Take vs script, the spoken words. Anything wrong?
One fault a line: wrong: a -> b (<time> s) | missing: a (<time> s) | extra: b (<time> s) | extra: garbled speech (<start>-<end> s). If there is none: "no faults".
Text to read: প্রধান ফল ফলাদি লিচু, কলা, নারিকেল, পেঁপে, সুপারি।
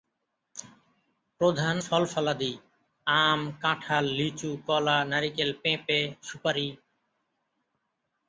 extra: আম কাঁঠাল (3.1 s)